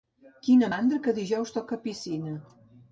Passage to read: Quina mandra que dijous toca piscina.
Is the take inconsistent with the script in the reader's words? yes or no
no